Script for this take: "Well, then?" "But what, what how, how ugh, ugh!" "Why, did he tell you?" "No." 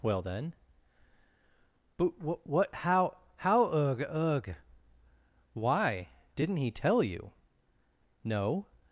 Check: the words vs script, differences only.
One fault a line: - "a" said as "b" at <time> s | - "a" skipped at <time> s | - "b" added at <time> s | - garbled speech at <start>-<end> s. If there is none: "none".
- "did" said as "didn't" at 6.4 s